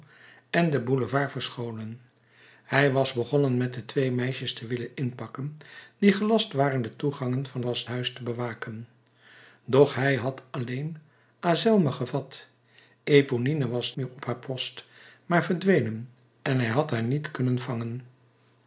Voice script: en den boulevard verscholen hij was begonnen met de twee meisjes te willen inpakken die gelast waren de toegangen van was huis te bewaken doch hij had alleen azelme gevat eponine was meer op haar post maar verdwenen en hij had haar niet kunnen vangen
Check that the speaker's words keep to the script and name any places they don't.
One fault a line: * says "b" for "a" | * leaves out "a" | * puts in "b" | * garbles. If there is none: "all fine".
all fine